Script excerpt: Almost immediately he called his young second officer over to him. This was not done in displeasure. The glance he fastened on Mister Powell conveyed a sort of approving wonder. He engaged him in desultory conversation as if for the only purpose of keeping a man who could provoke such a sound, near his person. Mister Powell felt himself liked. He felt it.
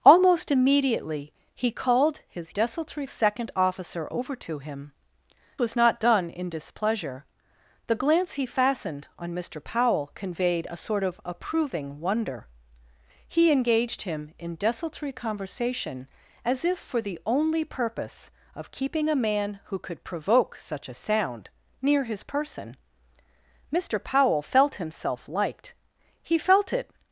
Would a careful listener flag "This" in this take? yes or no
yes